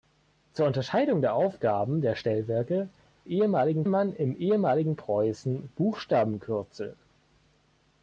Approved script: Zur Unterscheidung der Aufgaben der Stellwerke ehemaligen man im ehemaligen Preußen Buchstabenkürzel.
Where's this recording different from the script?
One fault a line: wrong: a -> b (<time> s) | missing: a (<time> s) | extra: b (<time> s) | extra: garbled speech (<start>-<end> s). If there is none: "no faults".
no faults